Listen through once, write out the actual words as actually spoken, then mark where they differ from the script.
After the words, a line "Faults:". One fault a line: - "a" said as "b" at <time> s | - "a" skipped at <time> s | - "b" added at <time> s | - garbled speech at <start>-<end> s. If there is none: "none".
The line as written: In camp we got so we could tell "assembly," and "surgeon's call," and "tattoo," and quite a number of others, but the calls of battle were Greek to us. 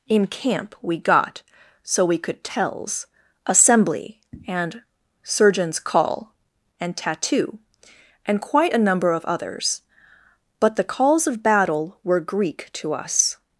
In camp we got so we could tells "assembly," and "surgeon's call," and "tattoo," and quite a number of others, but the calls of battle were Greek to us.
Faults:
- "tell" said as "tells" at 2.4 s